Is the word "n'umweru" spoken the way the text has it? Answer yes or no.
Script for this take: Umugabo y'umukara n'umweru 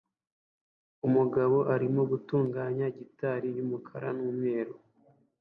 yes